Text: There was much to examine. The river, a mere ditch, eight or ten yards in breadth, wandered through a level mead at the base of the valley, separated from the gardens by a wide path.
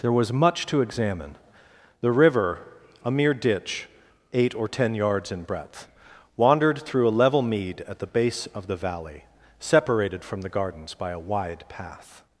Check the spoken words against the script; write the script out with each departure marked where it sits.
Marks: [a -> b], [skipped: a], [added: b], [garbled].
There was much to examine. The river, a mere ditch, eight or ten yards in breadth, wandered through a level mead at the base of the valley, separated from the gardens by a wide path.